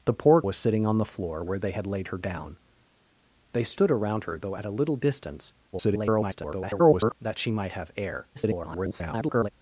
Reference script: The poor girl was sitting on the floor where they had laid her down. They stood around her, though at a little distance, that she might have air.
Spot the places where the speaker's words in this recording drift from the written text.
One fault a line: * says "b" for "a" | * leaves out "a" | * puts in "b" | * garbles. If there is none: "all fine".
* leaves out "girl"
* garbles
* garbles